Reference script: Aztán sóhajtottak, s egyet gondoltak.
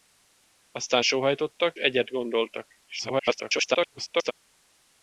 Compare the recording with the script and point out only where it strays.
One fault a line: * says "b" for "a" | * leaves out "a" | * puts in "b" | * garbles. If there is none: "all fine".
* leaves out "s"
* garbles